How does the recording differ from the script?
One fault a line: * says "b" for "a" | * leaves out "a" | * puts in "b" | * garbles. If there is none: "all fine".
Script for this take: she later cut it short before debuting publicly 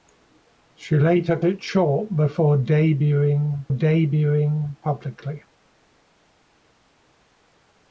* leaves out "cut"
* puts in "debuting"